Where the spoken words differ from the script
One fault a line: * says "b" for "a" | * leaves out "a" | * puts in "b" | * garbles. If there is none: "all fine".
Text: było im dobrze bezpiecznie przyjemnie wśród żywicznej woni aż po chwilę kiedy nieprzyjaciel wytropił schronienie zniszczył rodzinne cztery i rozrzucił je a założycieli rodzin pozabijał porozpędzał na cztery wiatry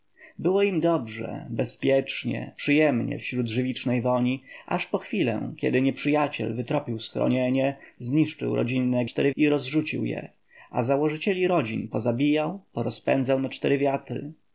all fine